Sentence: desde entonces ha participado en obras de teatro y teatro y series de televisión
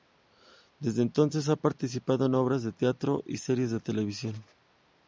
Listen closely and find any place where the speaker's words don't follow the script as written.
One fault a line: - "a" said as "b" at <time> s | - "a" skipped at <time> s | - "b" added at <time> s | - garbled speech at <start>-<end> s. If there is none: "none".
- "teatro y" skipped at 3.4 s